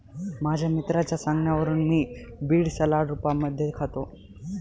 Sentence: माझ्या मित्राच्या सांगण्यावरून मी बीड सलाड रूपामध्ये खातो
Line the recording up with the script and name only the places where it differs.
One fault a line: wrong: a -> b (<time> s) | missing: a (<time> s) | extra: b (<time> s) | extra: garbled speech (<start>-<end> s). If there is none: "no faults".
no faults